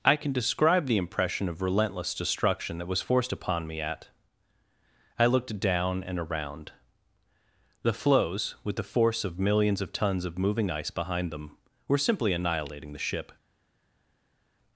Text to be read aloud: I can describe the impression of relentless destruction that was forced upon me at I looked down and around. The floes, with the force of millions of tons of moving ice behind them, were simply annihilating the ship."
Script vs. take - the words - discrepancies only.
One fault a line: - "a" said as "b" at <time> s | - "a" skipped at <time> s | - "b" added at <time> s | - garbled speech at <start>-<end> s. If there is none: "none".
none